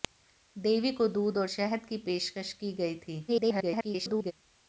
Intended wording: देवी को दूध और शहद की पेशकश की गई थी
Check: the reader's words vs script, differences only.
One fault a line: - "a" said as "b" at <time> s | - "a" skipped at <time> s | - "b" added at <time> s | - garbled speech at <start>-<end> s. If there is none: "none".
- garbled speech at 3.3-4.3 s